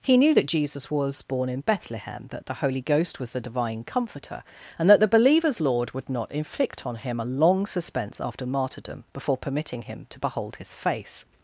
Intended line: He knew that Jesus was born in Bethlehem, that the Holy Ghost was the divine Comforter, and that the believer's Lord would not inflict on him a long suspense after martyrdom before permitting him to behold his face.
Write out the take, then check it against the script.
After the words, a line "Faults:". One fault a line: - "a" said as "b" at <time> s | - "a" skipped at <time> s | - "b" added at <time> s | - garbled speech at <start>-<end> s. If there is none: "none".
He knew that Jesus was born in Bethlehem, that the Holy Ghost was the divine Comforter, and that the believer's Lord would not inflict on him a long suspense after martyrdom before permitting him to behold his face.
Faults:
none